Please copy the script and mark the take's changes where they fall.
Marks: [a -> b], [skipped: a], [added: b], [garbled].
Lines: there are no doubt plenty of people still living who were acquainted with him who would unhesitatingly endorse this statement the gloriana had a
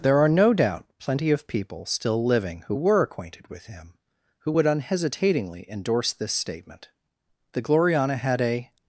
there are no doubt plenty of people still living who were acquainted with him who would unhesitatingly endorse this statement the gloriana had a